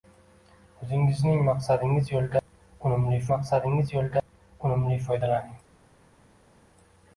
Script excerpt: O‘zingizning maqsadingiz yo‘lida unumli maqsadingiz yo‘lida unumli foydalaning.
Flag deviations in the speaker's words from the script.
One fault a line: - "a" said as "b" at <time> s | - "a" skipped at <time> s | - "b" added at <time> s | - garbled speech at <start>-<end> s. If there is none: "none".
none